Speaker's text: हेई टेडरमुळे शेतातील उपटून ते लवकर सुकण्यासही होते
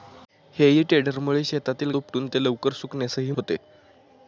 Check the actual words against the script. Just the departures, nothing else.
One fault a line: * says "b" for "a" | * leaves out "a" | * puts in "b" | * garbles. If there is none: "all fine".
all fine